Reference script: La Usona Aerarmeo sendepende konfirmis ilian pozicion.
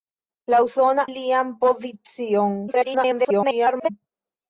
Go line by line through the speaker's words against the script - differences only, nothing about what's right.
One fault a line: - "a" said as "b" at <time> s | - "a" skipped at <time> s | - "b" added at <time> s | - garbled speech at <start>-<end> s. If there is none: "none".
- "Aerarmeo sendepende konfirmis" skipped at 1.1 s
- garbled speech at 2.7-3.9 s